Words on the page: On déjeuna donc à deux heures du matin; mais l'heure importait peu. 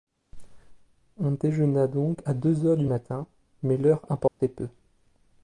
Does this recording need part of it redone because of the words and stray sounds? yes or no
yes